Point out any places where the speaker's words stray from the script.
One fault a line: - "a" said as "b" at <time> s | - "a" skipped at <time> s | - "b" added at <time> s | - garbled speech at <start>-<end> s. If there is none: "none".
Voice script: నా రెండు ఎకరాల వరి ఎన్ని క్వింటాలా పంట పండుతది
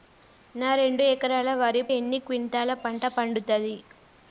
none